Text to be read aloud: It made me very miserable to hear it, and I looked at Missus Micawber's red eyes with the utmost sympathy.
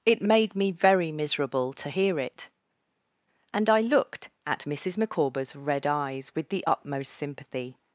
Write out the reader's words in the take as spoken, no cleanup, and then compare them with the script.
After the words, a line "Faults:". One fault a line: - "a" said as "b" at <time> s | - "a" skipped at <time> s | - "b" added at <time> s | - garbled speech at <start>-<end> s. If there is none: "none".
It made me very miserable to hear it, and I looked at Missus Micawber's red eyes with the utmost sympathy.
Faults:
none